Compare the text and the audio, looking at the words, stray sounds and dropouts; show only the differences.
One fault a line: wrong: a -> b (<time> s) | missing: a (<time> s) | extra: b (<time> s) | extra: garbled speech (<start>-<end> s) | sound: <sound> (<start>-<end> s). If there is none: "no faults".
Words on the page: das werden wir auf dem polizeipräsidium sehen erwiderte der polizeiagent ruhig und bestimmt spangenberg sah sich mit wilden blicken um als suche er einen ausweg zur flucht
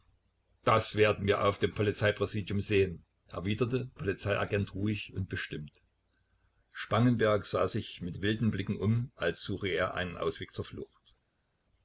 missing: der (3.9 s)